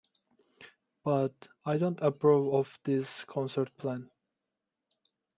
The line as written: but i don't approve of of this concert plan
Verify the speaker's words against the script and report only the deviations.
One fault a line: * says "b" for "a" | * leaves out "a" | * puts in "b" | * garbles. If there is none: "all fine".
* leaves out "of"